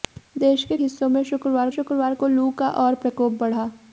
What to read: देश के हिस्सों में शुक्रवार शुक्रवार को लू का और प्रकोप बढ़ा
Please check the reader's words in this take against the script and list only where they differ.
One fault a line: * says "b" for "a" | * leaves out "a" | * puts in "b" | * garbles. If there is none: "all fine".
all fine